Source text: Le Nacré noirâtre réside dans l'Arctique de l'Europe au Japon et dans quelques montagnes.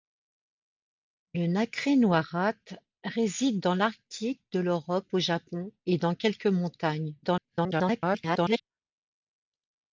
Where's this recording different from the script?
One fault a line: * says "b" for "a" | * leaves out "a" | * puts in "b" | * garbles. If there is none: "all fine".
* garbles